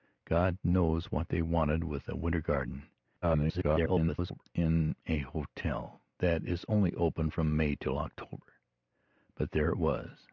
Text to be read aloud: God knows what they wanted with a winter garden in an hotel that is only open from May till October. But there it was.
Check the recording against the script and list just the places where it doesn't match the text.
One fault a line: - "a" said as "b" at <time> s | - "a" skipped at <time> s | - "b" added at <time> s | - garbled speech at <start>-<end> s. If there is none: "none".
- garbled speech at 3.2-4.5 s